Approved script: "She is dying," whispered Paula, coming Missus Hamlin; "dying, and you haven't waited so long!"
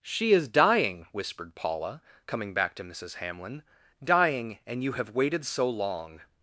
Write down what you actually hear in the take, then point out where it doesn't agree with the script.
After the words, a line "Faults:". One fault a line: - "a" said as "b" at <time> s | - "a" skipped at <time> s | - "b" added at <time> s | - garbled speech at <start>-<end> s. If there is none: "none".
"She is dying," whispered Paula, coming back to Missus Hamlin; "dying, and you have waited so long!"
Faults:
- "back to" added at 2.5 s
- "haven't" said as "have" at 4.9 s